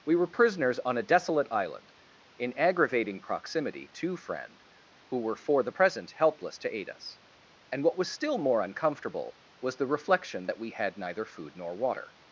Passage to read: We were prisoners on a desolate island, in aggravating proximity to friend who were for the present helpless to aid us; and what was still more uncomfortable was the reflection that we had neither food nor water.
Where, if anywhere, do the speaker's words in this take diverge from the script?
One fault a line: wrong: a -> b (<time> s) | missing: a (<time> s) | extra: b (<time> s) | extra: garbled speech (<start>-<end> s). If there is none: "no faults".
no faults